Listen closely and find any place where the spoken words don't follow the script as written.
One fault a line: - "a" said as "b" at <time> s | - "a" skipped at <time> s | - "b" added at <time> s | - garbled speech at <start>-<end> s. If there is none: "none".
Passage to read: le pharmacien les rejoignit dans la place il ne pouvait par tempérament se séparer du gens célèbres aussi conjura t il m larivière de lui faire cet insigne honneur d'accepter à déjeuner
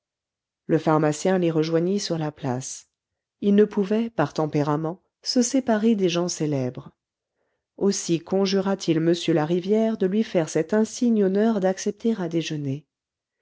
- "dans" said as "sur" at 2.0 s
- "du" said as "des" at 5.9 s